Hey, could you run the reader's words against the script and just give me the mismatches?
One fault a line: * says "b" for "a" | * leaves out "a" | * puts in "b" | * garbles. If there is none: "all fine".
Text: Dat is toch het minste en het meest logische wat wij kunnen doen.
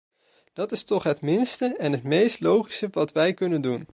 all fine